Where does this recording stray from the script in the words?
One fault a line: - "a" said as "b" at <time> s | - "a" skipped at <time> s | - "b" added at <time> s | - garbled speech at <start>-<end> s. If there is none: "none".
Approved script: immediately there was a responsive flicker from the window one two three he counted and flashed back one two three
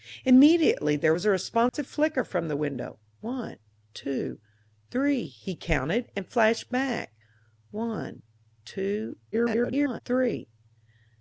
- garbled speech at 9.3-10.0 s